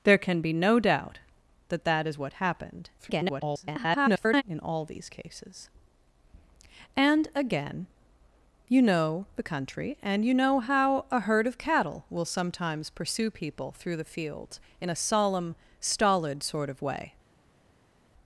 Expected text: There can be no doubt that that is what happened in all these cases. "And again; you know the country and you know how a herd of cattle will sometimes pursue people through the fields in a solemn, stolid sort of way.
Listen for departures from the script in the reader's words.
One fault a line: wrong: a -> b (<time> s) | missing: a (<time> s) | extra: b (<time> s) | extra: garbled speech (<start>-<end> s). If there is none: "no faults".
extra: garbled speech (3.0-4.4 s)